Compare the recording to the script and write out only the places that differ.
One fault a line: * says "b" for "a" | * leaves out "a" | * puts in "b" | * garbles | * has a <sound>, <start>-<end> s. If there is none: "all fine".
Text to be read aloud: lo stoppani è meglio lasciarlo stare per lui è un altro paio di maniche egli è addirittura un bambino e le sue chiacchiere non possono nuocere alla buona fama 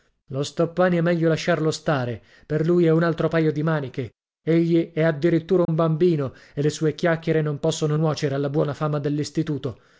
* has a dropout, 5.6-5.7 s